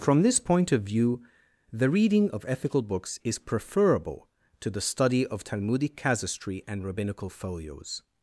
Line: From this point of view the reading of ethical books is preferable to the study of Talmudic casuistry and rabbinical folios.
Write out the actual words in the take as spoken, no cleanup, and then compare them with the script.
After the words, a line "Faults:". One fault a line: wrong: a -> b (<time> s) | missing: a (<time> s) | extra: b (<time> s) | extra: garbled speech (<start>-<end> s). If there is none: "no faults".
From this point of view the reading of ethical books is preferable to the study of Talmudic casuistry and rabbinical folios.
Faults:
no faults